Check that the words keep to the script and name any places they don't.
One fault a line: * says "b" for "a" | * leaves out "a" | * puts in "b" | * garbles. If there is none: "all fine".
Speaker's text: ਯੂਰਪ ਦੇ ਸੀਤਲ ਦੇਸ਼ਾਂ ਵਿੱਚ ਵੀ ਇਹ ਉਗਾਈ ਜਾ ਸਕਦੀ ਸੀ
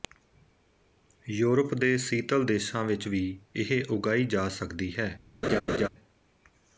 * says "ਹੈ" for "ਸੀ"